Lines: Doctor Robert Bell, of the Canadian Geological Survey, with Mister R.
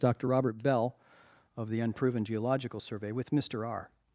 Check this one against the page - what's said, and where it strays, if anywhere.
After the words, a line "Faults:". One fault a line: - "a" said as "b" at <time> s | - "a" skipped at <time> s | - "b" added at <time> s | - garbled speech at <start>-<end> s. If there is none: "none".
Doctor Robert Bell, of the Unproven Geological Survey, with Mister R.
Faults:
- "Canadian" said as "Unproven" at 1.8 s